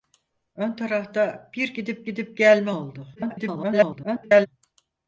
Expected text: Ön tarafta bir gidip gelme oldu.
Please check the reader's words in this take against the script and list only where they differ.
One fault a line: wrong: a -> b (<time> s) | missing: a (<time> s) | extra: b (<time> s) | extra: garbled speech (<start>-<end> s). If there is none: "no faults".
extra: gidip (2.0 s)
extra: garbled speech (3.2-4.5 s)